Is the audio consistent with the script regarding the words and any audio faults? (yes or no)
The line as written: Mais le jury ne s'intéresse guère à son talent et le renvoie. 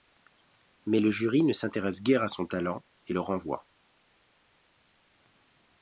yes